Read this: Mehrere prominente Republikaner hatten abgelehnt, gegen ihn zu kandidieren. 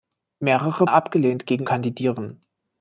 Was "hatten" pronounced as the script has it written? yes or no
no